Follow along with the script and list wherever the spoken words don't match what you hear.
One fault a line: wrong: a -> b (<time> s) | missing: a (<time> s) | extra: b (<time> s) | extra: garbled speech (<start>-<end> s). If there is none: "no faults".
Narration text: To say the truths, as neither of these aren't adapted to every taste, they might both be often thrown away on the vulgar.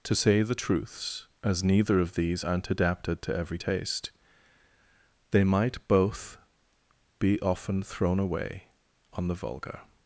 no faults